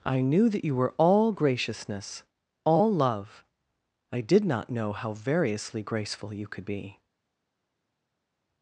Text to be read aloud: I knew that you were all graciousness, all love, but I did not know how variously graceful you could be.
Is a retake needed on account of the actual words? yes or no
yes